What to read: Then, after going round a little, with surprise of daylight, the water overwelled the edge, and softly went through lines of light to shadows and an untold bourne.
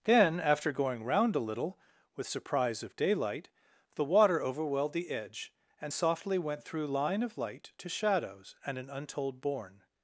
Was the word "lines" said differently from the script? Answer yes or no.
yes